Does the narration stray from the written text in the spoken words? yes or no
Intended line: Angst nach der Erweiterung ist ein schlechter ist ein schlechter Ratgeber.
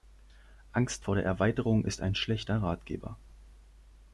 yes